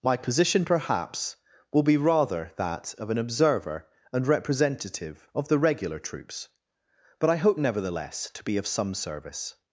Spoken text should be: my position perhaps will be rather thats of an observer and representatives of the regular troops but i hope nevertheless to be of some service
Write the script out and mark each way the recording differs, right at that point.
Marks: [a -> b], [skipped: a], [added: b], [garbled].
my position perhaps will be rather [thats -> that] of an observer and [representatives -> representative] of the regular troops but i hope nevertheless to be of some service